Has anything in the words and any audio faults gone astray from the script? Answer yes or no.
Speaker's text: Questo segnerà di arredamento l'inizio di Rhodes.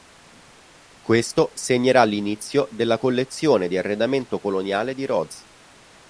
yes